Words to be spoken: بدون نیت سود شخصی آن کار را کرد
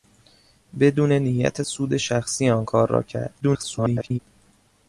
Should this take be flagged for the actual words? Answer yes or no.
yes